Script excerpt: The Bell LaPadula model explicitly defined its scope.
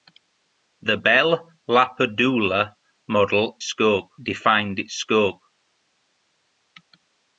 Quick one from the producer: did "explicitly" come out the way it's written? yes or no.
no